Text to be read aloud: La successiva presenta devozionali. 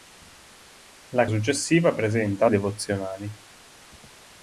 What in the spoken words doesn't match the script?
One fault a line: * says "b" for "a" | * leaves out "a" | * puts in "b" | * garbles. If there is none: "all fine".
all fine